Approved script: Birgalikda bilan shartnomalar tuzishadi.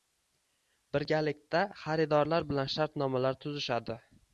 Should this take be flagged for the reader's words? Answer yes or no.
yes